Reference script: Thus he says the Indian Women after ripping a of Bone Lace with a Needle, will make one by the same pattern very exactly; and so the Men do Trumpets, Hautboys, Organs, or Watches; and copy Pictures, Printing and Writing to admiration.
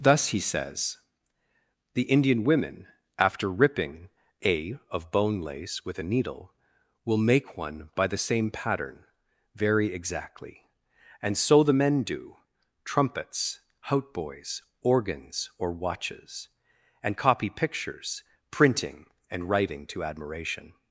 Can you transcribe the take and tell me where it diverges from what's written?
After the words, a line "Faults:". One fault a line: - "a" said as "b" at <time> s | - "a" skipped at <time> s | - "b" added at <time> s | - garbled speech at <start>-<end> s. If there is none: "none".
Thus he says the Indian Women after ripping a of Bone Lace with a Needle, will make one by the same pattern very exactly; and so the Men do Trumpets, Hautboys, Organs, or Watches; and copy Pictures, Printing and Writing to admiration.
Faults:
none